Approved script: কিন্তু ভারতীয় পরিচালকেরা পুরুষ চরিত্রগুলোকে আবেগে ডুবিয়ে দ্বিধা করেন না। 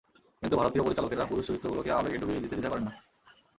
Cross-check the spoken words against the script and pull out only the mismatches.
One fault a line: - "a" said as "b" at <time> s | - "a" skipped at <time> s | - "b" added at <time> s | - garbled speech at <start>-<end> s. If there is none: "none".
- "দিতে" added at 2.4 s